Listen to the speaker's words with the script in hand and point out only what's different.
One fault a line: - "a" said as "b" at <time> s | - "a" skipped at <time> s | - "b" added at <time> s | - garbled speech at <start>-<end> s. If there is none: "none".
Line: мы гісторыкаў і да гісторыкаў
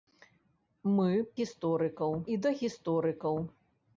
none